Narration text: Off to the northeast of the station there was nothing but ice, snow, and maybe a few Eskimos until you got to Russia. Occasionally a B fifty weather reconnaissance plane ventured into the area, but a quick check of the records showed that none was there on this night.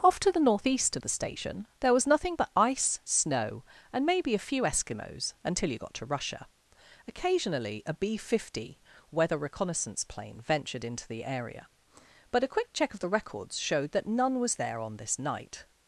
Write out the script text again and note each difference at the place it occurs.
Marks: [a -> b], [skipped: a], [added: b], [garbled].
Off to the northeast of the station there was nothing but ice, snow, and maybe a few Eskimos until you got to Russia. Occasionally a B fifty weather reconnaissance plane ventured into the area, but a quick check of the records showed that none was there on this night.